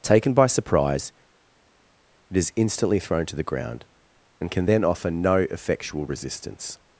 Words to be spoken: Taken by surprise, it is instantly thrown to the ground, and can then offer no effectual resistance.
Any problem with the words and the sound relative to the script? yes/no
no